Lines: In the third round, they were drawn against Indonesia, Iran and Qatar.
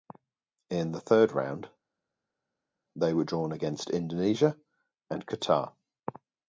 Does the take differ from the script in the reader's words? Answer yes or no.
yes